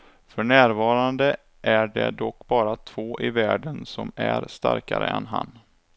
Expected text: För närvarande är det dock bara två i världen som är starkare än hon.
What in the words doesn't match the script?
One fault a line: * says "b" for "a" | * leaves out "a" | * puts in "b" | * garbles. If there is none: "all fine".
* says "han" for "hon"